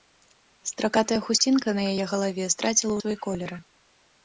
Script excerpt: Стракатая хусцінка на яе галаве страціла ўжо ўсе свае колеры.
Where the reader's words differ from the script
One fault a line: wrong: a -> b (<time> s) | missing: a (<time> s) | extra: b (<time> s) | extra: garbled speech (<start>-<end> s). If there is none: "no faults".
missing: ўжо ўсе (2.9 s)